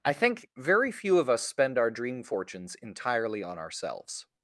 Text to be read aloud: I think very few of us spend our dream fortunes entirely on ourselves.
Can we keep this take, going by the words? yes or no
yes